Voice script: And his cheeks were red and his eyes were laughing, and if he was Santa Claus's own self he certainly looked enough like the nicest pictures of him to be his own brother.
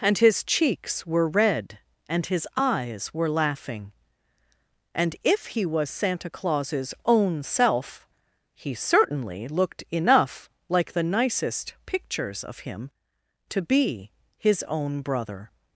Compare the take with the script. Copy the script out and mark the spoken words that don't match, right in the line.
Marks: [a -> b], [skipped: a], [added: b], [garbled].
And his cheeks were red and his eyes were laughing, and if he was Santa Claus's own self he certainly looked enough like the nicest pictures of him to be his own brother.